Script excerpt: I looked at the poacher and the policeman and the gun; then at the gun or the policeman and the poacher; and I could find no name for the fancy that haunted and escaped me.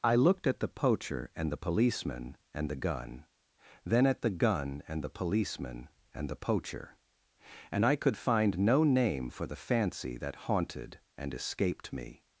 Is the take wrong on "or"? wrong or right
wrong